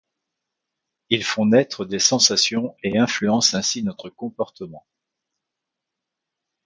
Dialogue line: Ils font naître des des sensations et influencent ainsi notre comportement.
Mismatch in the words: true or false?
true